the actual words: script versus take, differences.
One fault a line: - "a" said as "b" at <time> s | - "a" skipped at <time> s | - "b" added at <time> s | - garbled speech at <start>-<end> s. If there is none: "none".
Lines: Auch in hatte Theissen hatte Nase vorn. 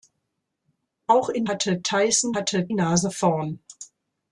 none